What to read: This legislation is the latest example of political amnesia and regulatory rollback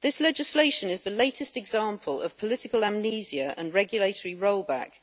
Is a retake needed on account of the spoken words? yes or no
no